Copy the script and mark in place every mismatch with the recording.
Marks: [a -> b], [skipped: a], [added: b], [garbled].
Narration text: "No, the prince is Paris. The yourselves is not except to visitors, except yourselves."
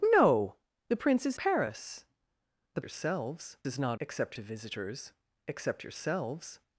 "No, the prince is Paris. The yourselves is not except to visitors, except yourselves."